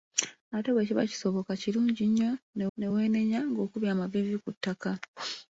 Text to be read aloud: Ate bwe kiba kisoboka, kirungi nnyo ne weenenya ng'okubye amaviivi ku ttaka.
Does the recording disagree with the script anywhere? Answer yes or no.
yes